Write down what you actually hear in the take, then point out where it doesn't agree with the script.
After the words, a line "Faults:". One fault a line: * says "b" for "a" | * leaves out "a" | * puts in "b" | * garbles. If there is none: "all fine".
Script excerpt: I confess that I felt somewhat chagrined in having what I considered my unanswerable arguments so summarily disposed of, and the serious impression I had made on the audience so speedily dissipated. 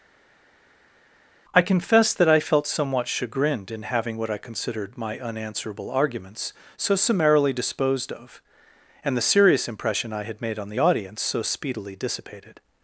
I confess that I felt somewhat chagrined in having what I considered my unanswerable arguments so summarily disposed of, and the serious impression I had made on the audience so speedily dissipated.
Faults:
all fine